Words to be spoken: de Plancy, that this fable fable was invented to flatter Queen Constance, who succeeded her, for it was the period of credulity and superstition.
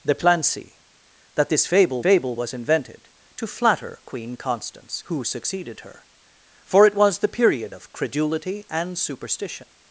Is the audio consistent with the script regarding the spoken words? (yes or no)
yes